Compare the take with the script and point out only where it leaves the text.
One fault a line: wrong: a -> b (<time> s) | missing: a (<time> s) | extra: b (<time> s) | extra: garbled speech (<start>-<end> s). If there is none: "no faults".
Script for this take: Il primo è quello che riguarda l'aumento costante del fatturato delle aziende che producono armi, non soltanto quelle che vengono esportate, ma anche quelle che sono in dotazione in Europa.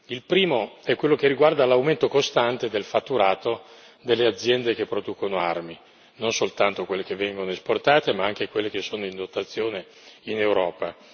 no faults